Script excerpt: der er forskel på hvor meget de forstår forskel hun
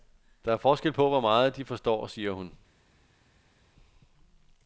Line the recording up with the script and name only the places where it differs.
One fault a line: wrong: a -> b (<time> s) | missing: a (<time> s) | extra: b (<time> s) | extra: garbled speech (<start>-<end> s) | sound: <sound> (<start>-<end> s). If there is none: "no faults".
wrong: forskel -> siger (2.1 s)